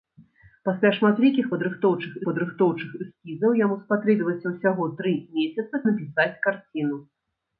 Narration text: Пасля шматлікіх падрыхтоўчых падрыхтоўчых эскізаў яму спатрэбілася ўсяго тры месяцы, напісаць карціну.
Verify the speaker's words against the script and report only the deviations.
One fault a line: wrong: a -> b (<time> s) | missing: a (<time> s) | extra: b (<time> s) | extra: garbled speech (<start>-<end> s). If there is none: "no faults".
no faults